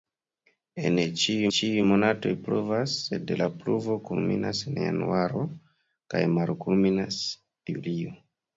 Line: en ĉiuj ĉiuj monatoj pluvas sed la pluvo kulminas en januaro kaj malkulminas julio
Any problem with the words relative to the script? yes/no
no